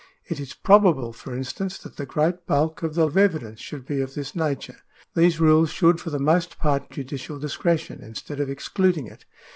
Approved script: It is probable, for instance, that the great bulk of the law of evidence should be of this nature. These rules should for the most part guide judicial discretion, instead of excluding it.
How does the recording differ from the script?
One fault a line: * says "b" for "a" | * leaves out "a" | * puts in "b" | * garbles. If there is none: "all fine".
* leaves out "law"
* leaves out "guide"